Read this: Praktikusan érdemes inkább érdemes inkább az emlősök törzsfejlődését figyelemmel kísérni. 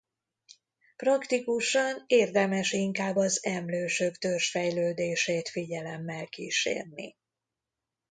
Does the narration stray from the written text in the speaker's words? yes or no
yes